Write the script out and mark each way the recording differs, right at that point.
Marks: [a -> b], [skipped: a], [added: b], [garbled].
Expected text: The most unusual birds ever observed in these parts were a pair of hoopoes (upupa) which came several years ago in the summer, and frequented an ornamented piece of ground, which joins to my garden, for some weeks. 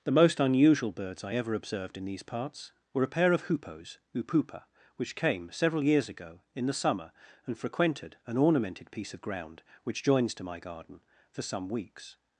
The most unusual birds [added: I] ever observed in these parts were a pair of hoopoes (upupa) which came several years ago in the summer, and frequented an ornamented piece of ground, which joins to my garden, for some weeks.